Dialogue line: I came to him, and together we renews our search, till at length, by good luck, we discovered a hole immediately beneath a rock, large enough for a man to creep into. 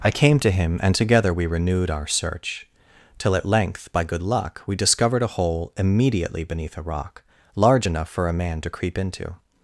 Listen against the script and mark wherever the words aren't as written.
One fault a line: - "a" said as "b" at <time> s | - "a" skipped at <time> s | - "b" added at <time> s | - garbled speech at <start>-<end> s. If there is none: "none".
- "renews" said as "renewed" at 1.4 s